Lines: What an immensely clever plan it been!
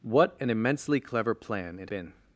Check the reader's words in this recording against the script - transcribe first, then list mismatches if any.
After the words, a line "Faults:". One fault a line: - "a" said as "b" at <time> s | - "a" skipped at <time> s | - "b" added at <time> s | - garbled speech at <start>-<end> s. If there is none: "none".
What an immensely clever plan it been!
Faults:
none